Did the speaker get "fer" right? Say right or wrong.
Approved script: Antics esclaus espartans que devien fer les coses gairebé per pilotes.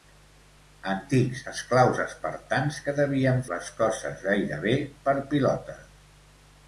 wrong